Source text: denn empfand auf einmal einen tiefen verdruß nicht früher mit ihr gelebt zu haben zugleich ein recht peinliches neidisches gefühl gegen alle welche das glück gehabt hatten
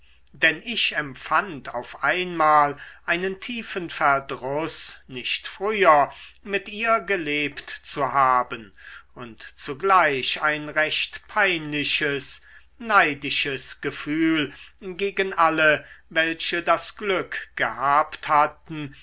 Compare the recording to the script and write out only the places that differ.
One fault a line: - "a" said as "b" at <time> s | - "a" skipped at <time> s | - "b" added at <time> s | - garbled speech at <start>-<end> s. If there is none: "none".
- "ich" added at 0.7 s
- "und" added at 9.1 s